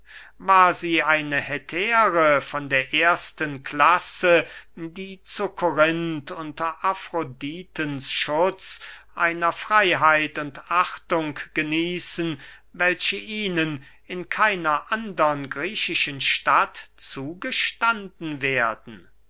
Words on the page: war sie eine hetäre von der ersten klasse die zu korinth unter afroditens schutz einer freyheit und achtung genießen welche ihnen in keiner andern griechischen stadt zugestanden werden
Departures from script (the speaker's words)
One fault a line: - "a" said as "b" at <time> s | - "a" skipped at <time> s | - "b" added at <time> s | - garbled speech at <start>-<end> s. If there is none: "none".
none